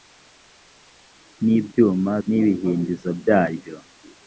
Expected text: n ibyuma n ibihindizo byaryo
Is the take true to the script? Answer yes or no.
yes